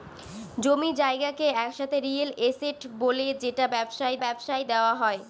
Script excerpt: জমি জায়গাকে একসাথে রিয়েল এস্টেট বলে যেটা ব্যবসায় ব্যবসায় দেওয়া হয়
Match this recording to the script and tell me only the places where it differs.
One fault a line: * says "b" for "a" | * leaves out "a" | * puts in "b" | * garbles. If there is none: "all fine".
all fine